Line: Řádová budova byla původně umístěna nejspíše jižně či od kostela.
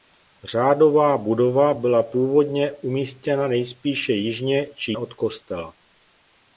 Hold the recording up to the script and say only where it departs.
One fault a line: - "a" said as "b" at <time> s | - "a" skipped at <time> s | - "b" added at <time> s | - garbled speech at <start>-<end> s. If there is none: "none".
none